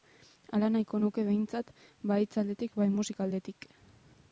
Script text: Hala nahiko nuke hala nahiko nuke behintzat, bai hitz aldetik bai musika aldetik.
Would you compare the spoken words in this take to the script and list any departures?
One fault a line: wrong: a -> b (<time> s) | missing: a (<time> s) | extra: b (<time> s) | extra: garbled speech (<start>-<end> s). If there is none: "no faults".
missing: hala nahiko nuke (1.2 s)